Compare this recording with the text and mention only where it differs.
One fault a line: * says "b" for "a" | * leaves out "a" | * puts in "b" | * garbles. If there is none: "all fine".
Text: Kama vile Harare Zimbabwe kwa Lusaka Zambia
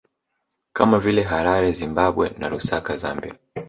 * says "na" for "kwa"